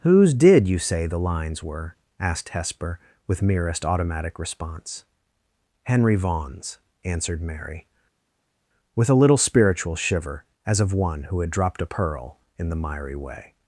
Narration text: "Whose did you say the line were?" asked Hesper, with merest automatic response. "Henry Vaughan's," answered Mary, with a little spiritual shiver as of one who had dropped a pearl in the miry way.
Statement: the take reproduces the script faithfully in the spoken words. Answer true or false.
false